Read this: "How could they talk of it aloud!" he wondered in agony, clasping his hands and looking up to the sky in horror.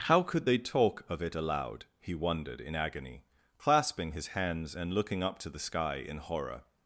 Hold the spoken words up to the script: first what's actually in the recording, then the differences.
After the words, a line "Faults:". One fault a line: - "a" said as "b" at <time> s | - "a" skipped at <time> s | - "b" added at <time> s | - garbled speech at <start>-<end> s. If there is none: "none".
"How could they talk of it aloud!" he wondered in agony, clasping his hands and looking up to the sky in horror.
Faults:
none